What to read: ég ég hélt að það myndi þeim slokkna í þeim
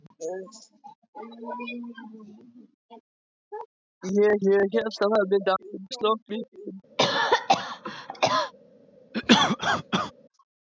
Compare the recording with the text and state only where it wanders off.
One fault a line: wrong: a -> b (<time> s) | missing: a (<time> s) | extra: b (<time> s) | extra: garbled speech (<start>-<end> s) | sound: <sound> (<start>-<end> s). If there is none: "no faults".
sound: cough (7.0-8.5 s)
sound: cough (9.1-10.1 s)